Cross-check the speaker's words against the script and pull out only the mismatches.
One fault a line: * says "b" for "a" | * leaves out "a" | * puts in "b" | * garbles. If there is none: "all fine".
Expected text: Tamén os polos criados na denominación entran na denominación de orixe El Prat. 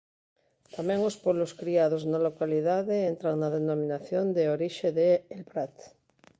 * says "localidade" for "denominación"
* puts in "de"